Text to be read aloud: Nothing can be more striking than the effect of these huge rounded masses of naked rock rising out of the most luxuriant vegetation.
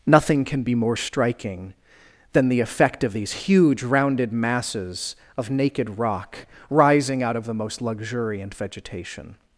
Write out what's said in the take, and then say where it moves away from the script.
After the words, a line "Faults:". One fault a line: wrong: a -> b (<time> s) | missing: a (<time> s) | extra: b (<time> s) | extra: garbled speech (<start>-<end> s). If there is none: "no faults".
Nothing can be more striking than the effect of these huge rounded masses of naked rock rising out of the most luxuriant vegetation.
Faults:
no faults